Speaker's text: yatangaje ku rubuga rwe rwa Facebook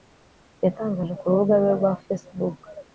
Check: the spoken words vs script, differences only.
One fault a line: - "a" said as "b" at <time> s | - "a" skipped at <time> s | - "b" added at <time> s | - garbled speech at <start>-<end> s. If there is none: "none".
none